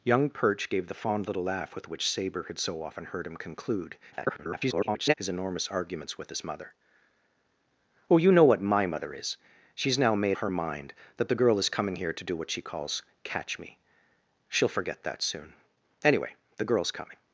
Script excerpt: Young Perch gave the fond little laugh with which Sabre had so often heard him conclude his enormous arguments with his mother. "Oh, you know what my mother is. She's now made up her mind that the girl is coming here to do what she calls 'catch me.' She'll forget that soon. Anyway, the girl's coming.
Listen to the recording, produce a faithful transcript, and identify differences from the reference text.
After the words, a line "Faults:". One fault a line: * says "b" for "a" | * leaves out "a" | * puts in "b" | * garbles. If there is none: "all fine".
Young Perch gave the fond little laugh with which Sabre had so often heard him conclude [garbled] his enormous arguments with his mother. "Oh, you know what my mother is. She's now made her mind that the girl is coming here to do what she calls 'catch me.' She'll forget that soon. Anyway, the girl's coming.
Faults:
* garbles
* leaves out "up"